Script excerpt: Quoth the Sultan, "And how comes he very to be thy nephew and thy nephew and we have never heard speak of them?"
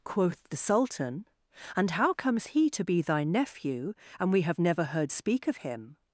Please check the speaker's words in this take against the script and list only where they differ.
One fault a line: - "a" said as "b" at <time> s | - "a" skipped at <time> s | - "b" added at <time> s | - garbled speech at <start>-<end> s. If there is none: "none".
- "very" skipped at 2.7 s
- "thy nephew and" skipped at 4.3 s
- "them" said as "him" at 5.6 s